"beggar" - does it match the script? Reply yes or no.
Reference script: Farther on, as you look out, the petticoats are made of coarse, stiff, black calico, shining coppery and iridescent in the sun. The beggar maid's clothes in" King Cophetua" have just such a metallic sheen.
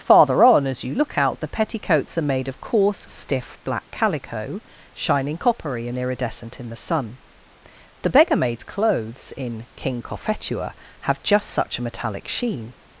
yes